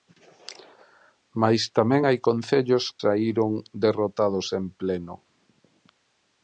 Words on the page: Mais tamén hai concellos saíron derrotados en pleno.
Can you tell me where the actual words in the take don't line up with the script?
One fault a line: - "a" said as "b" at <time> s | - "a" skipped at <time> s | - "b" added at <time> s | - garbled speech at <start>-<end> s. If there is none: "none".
none